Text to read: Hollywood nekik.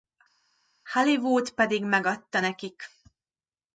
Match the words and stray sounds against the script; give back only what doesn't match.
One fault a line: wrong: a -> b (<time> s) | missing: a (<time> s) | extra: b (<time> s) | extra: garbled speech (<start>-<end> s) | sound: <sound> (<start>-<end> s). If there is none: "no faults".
extra: pedig megadta (1.5 s)